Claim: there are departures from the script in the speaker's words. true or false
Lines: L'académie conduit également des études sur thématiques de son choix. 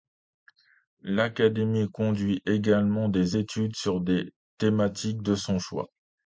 true